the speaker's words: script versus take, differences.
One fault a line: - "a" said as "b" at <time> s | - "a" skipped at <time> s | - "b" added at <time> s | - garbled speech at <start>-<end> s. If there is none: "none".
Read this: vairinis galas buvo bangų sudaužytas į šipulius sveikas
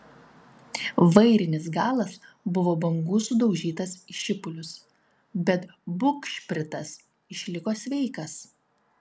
- "bet bugšpritas išliko" added at 5.5 s